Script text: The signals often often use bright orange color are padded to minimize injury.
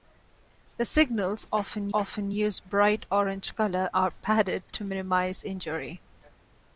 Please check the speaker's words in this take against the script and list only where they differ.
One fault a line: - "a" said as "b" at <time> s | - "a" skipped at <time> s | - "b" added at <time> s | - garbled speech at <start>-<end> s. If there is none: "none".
none